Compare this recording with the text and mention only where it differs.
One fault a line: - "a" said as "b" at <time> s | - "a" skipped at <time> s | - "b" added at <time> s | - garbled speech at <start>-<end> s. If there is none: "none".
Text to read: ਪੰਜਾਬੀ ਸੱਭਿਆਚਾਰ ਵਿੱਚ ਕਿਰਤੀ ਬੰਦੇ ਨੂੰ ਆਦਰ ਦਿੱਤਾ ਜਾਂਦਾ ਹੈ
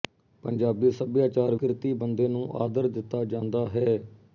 - "ਵਿੱਚ" skipped at 1.6 s